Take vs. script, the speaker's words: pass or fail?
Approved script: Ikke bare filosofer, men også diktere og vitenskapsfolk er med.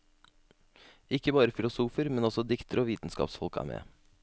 pass